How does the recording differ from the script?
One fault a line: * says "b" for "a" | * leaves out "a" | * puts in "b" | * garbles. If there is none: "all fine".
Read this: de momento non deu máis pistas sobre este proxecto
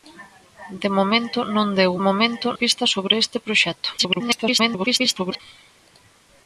* says "momento" for "máis"
* garbles